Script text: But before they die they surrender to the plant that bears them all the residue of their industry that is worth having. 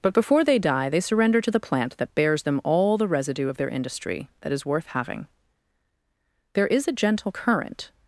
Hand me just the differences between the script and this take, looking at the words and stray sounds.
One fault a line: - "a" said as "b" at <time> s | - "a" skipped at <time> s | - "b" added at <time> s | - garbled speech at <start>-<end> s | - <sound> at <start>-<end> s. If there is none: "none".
- "There is a gentle current" added at 6.5 s